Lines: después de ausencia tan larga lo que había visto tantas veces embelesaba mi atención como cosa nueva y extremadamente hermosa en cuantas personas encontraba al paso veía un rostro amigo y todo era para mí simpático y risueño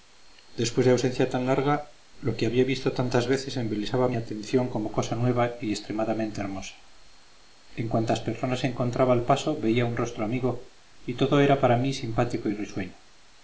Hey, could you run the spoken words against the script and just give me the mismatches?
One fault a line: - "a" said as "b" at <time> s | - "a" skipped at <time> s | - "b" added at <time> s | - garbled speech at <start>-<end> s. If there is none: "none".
none